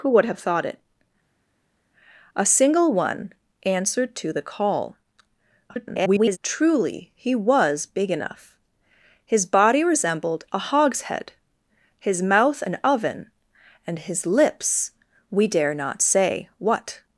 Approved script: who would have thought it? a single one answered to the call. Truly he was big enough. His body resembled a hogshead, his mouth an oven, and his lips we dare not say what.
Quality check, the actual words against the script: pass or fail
fail